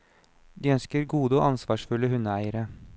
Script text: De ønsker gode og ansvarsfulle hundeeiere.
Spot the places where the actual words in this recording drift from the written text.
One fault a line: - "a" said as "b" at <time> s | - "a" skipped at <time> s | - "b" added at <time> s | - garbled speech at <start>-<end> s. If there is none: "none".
none